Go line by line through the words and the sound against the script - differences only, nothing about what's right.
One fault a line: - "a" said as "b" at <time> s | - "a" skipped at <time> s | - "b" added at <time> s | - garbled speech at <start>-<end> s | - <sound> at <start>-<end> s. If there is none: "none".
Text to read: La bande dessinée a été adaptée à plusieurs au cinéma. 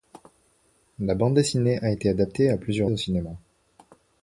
none